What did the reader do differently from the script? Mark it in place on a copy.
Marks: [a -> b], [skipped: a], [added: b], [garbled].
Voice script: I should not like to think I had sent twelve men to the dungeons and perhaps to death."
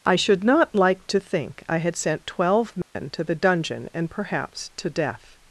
I should not like to think I had sent twelve men to the [dungeons -> dungeon] and perhaps to death."